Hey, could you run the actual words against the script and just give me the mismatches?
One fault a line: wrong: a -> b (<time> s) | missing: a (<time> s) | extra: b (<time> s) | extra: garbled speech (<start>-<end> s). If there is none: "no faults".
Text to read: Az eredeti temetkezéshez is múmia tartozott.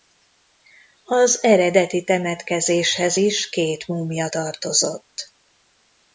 extra: két (3.5 s)